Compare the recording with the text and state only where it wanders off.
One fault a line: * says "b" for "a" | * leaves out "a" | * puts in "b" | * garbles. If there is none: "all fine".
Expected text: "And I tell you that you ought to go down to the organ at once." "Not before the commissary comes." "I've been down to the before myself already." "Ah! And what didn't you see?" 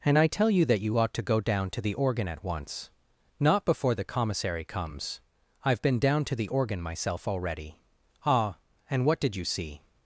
* says "organ" for "before"
* says "did" for "didn't"